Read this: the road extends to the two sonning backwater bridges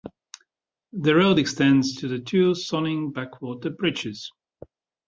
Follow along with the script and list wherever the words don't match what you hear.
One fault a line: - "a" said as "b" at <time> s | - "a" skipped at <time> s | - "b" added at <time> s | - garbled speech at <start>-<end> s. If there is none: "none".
none